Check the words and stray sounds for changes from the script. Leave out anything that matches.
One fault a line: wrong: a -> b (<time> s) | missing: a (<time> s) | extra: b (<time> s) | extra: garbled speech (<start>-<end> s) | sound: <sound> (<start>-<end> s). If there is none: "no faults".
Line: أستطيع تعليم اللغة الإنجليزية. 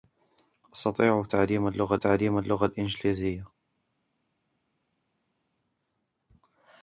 extra: تعليم اللغة (1.9 s)